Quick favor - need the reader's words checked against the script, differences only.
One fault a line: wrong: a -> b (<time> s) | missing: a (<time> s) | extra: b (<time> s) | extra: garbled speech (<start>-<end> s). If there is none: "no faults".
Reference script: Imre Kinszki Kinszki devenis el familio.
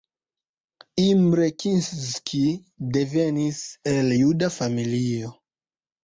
missing: Kinszki (2.4 s)
extra: juda (4.2 s)